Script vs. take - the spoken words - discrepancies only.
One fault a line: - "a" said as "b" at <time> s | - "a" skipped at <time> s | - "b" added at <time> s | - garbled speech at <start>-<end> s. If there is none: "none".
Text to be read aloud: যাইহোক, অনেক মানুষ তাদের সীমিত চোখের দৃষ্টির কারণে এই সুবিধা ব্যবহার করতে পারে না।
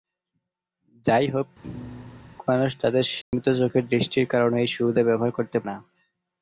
- "অনেক" skipped at 1.5 s
- "পারে" skipped at 5.6 s